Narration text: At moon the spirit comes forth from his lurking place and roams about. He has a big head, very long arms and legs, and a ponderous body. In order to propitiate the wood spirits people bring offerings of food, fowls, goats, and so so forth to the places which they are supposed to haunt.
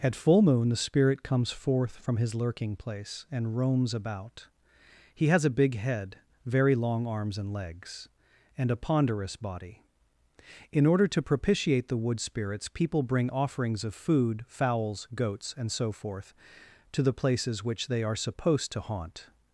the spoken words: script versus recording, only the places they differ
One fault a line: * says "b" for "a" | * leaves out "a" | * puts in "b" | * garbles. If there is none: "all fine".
* puts in "full"
* leaves out "so"